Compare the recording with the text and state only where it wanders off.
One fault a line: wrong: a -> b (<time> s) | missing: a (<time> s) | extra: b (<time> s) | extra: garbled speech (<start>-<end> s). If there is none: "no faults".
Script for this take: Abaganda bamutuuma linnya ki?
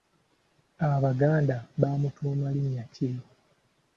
no faults